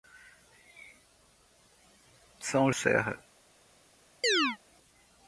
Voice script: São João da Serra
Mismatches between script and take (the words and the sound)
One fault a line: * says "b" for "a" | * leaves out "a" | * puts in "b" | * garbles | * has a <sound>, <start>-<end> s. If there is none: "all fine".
* leaves out "João da"
* has a chirp, 4.2-4.6 s